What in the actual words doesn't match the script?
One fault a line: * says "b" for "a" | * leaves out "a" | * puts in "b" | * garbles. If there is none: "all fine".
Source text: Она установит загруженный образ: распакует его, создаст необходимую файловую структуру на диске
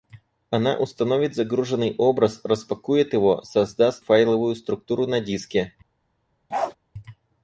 * leaves out "необходимую"